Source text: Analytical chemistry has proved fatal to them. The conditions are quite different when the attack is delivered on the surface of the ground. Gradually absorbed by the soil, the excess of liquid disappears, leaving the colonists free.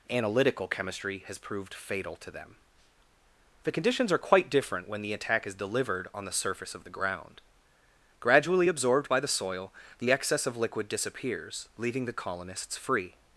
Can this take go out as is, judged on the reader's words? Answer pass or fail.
pass